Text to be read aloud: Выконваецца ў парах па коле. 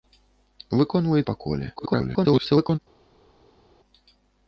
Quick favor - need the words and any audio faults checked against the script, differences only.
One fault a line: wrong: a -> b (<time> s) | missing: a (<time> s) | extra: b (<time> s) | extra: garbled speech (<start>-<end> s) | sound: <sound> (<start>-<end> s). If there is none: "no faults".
missing: ў парах (1.2 s)
extra: garbled speech (1.8-2.8 s)